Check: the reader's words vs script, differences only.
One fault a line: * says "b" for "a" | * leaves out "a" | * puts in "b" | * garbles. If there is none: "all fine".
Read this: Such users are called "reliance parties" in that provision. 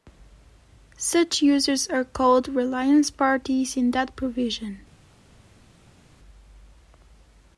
all fine